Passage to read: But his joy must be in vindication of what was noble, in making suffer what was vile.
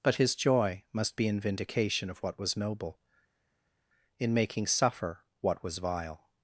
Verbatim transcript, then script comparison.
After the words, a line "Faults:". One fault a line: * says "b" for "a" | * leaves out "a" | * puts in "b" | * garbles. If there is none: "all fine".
But his joy must be in vindication of what was noble, in making suffer what was vile.
Faults:
all fine